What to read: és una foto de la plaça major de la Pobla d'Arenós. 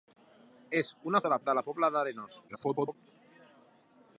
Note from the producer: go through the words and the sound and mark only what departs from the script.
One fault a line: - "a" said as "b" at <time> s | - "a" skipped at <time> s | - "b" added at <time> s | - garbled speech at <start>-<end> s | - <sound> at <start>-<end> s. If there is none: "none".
- "foto" skipped at 1.2 s
- "plaça major" skipped at 1.4 s
- garbled speech at 2.5-3.0 s